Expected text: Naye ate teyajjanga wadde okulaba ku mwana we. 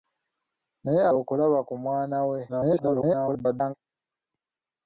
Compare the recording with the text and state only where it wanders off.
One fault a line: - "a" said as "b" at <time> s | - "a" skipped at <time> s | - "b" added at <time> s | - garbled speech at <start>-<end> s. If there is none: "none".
- "ate teyajjanga wadde" skipped at 1.0 s
- garbled speech at 2.5-3.7 s